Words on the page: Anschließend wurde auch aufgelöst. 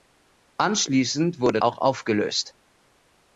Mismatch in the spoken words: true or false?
false